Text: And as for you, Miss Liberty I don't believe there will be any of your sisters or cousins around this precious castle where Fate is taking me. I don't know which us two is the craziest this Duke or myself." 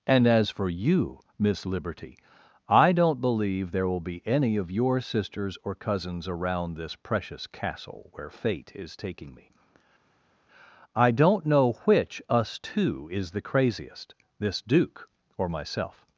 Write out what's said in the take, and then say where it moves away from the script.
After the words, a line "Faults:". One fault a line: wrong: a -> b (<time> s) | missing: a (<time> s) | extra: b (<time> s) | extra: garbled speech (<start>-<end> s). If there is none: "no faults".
And as for you, Miss Liberty I don't believe there will be any of your sisters or cousins around this precious castle where Fate is taking me. I don't know which us two is the craziest this Duke or myself."
Faults:
no faults